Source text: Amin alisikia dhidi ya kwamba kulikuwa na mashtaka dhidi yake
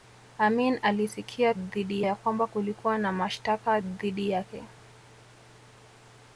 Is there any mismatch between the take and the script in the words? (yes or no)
no